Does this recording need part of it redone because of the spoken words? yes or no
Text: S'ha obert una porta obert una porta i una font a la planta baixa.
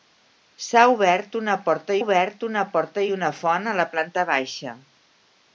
no